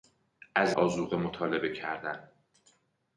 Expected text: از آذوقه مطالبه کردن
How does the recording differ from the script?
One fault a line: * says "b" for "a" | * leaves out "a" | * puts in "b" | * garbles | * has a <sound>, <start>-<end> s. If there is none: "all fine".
all fine